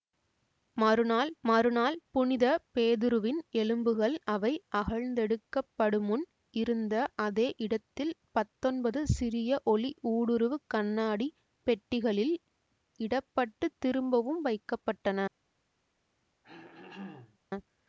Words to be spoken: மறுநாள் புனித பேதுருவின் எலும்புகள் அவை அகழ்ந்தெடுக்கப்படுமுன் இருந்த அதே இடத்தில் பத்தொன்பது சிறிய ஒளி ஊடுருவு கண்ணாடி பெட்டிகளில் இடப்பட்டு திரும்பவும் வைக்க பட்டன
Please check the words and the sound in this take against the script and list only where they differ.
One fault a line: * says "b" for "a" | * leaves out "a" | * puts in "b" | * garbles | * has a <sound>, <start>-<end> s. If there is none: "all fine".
* puts in "மறுநாள்"
* has a throat clearing, 16.4-17.4 s